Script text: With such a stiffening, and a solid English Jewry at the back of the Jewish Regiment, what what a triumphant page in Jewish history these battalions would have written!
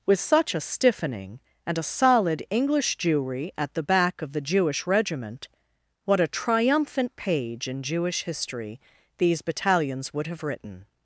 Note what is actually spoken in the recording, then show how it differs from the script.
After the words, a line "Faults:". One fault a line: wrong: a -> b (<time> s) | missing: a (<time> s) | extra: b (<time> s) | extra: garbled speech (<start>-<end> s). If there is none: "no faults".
With such a stiffening, and a solid English Jewry at the back of the Jewish Regiment, what a triumphant page in Jewish history these battalions would have written!
Faults:
missing: what (6.2 s)